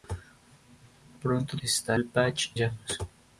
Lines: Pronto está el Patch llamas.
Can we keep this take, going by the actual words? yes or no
yes